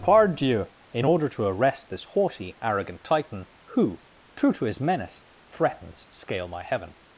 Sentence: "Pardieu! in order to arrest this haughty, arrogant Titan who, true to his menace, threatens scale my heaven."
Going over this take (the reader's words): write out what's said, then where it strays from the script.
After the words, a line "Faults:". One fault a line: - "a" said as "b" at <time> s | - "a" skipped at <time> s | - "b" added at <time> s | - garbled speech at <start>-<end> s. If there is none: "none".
"Pardieu! in order to arrest this haughty, arrogant Titan who, true to his menace, threatens scale my heaven."
Faults:
none